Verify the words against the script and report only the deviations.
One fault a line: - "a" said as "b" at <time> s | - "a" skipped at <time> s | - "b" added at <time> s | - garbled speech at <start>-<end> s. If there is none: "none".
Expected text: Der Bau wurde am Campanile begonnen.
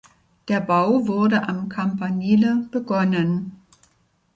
none